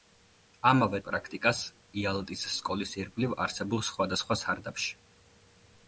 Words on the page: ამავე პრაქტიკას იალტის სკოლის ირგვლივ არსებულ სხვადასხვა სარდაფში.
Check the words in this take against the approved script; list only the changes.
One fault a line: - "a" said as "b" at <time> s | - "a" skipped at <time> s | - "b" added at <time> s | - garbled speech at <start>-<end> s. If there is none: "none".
none